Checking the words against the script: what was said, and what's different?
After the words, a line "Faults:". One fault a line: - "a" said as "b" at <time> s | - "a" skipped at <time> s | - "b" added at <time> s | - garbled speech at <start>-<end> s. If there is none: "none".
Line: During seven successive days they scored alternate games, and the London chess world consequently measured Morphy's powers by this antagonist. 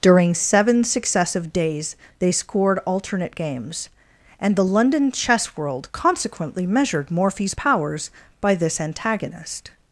During seven successive days they scored alternate games, and the London chess world consequently measured Morphy's powers by this antagonist.
Faults:
none